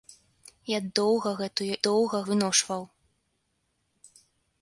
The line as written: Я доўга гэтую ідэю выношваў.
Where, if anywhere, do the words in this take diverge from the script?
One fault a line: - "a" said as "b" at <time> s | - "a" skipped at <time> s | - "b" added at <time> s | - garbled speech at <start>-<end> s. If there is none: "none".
- "ідэю" said as "доўга" at 1.9 s